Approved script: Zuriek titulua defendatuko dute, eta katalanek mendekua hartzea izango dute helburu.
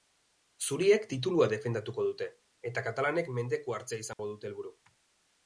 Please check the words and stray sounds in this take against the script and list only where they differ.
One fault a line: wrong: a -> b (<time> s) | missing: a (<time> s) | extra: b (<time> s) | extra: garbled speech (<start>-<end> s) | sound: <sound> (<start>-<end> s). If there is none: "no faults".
sound: dropout (4.1-4.2 s)